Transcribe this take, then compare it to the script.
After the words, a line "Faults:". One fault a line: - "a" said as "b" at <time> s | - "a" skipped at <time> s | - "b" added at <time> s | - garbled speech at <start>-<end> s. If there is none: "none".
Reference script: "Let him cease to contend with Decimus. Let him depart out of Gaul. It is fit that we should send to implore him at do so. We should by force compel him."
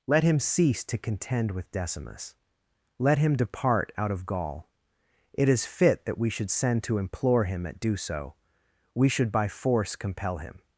"Let him cease to contend with Decimus. Let him depart out of Gaul. It is fit that we should send to implore him at do so. We should by force compel him."
Faults:
none